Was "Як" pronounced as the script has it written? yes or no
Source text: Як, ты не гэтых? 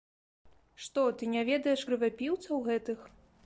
no